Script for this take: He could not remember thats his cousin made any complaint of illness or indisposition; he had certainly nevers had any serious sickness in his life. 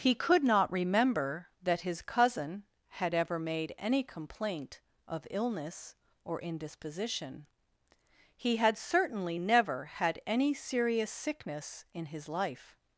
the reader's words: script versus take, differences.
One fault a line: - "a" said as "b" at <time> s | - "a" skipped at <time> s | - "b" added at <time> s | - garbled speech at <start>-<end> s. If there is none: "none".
- "thats" said as "that" at 1.6 s
- "had ever" added at 2.9 s
- "nevers" said as "never" at 9.3 s